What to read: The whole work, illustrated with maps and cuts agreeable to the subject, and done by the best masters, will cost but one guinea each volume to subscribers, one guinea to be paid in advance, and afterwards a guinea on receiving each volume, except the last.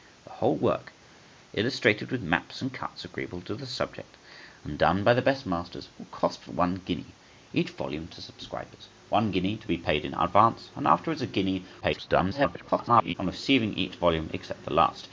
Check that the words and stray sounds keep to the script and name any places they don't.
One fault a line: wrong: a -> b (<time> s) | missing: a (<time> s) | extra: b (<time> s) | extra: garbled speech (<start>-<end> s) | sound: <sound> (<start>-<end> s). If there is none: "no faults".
extra: garbled speech (11.8-13.1 s)